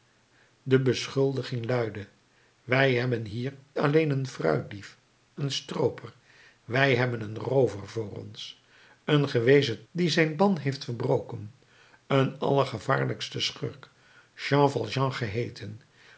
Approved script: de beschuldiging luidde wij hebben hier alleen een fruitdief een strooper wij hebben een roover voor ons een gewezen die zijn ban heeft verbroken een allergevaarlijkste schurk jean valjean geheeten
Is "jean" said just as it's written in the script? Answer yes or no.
yes